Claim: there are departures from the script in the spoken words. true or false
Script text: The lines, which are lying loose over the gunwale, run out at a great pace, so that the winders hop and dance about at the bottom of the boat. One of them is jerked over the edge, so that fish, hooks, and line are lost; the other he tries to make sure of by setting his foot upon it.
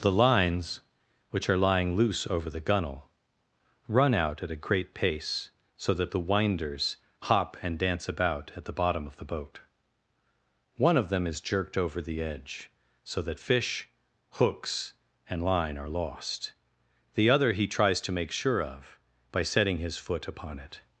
false